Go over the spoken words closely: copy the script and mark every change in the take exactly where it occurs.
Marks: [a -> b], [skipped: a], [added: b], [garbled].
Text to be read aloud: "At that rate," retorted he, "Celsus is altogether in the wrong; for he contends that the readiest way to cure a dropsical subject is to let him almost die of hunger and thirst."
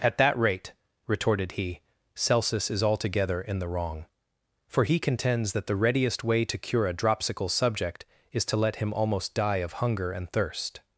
"At that rate," retorted he, "Celsus is altogether in the wrong; for he contends that the readiest way to cure a dropsical subject is to let him almost die of hunger and thirst."